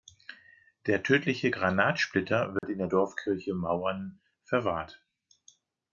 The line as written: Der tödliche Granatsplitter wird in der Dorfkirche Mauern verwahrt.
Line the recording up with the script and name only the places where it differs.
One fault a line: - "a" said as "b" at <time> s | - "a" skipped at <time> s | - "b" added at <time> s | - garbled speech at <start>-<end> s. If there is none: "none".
none